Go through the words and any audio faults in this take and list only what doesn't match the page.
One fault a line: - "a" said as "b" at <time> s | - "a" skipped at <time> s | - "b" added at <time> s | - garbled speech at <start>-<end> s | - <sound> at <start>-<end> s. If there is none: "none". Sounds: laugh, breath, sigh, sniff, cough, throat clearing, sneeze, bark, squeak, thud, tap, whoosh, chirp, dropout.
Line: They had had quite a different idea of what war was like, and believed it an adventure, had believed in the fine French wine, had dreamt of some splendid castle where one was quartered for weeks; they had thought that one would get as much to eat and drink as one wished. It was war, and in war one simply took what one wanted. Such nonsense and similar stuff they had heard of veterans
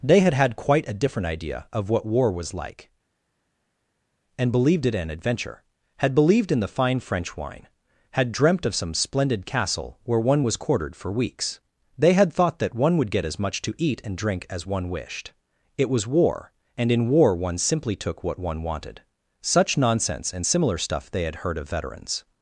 none